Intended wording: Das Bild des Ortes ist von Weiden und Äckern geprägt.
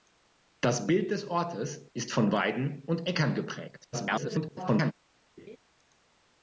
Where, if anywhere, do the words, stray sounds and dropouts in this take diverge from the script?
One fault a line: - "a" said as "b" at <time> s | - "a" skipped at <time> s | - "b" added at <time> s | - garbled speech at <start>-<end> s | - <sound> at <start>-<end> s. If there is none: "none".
- garbled speech at 3.9-4.9 s
- laugh at 5.4-5.6 s